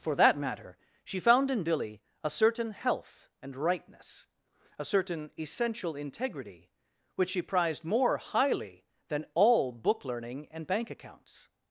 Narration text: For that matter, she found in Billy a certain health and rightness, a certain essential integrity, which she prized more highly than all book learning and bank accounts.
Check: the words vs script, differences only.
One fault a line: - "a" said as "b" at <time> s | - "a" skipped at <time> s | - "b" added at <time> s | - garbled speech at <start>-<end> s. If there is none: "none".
none